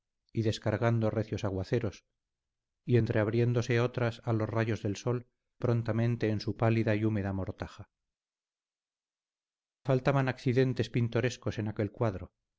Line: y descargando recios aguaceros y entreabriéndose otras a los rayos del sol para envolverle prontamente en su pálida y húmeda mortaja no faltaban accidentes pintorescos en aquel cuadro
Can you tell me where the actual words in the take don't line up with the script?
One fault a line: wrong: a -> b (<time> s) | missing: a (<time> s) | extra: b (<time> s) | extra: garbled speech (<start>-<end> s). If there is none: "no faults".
missing: para envolverle (5.3 s)
missing: no (7.9 s)